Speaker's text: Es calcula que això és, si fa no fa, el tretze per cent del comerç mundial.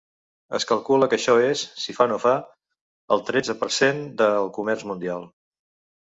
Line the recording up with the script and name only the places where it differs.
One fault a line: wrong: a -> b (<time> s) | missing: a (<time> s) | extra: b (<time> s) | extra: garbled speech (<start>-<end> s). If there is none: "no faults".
no faults